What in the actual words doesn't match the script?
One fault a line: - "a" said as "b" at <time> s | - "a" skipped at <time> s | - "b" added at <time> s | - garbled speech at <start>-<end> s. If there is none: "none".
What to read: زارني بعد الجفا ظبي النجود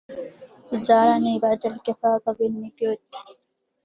none